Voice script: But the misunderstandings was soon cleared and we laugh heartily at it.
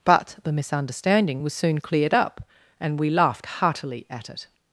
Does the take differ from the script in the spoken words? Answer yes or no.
yes